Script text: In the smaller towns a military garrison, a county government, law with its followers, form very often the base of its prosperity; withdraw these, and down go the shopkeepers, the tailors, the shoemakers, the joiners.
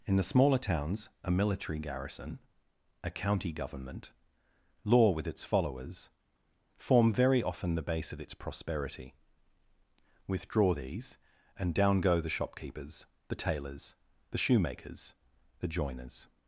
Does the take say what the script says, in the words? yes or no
yes